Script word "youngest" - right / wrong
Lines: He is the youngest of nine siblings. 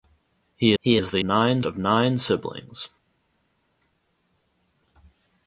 wrong